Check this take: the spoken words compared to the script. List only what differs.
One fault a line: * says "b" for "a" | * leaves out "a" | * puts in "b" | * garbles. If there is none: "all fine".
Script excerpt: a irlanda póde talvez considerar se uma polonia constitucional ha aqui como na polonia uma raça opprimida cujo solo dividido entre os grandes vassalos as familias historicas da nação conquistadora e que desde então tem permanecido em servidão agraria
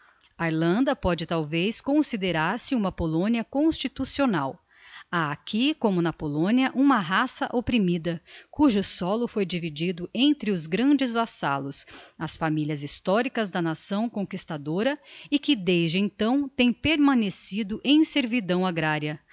* puts in "foi"